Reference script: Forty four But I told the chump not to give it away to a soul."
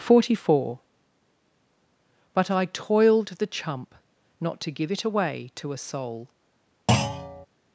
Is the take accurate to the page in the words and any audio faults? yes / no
no